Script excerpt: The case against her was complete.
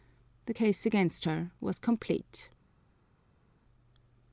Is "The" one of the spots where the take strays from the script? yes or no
no